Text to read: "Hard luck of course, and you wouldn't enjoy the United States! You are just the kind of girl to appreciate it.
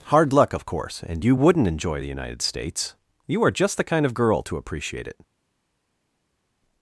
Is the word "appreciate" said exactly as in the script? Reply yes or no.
yes